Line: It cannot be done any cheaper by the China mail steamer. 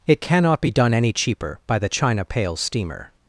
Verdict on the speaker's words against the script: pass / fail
fail